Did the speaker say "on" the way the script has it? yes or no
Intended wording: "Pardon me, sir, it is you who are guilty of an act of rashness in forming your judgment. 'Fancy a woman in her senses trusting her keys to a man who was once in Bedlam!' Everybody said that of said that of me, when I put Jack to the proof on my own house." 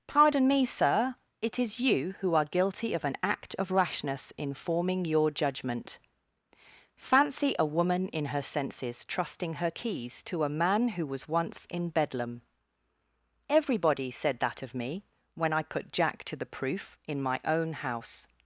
no